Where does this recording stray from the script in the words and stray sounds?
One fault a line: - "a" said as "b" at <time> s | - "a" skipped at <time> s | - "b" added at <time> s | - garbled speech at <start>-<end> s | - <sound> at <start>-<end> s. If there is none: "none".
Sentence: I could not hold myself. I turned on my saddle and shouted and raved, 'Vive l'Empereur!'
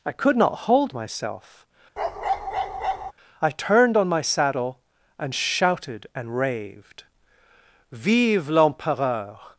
- bark at 2.0-3.1 s